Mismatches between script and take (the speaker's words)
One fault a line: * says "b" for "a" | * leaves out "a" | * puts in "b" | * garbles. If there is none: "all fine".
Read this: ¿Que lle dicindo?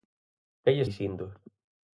all fine